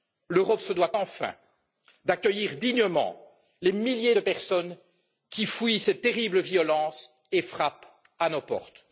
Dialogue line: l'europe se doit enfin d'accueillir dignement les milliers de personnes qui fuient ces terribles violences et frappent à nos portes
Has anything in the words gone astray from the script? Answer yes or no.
no